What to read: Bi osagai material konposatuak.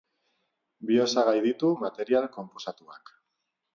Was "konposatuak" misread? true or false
false